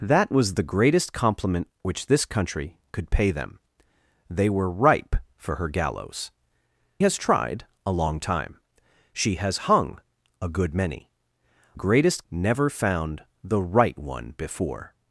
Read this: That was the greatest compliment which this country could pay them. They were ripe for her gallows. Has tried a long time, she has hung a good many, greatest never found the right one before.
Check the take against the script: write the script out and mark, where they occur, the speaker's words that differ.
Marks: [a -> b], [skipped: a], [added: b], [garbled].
That was the greatest compliment which this country could pay them. They were ripe for her gallows. Has tried a long time, she has hung a good many, greatest never found the right one before.